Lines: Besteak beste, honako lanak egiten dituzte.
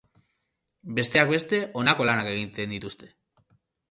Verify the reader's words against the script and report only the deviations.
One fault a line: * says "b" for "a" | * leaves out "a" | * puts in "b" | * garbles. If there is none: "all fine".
all fine